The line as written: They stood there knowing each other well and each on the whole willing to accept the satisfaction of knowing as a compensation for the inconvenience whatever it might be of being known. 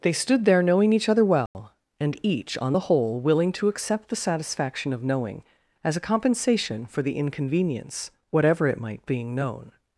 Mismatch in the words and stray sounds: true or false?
true